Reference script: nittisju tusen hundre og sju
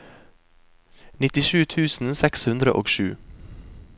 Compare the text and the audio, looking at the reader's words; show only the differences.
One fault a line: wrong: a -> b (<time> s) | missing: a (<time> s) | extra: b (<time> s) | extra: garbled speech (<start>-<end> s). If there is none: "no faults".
extra: seks (2.2 s)